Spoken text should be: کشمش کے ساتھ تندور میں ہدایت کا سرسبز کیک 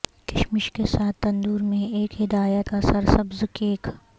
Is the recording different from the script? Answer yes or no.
yes